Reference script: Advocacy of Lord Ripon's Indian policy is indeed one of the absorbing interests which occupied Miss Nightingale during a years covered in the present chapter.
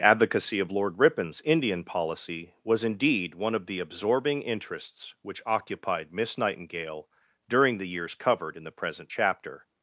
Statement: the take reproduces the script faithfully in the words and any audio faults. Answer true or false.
false